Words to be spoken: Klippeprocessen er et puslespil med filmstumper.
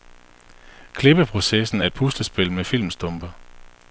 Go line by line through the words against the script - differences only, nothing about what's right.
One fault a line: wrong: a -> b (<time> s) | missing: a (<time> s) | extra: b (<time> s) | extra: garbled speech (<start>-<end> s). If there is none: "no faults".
no faults